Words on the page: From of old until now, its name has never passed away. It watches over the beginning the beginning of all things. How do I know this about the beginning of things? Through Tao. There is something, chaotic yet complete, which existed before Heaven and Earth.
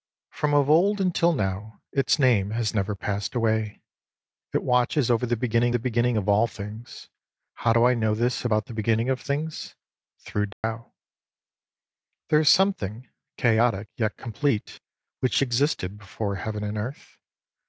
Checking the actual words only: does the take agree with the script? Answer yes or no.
yes